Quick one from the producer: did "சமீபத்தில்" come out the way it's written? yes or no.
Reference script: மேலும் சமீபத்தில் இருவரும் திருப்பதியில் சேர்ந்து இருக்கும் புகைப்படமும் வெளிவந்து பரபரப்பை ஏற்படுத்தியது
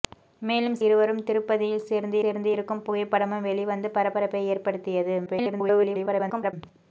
no